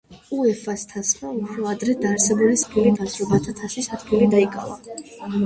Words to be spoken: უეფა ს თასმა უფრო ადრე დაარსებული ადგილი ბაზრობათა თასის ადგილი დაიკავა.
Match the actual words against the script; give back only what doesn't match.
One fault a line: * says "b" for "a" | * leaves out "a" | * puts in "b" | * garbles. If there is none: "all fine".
all fine